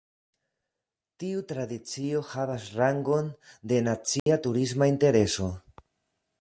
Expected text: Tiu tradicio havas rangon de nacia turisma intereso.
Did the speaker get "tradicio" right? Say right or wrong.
right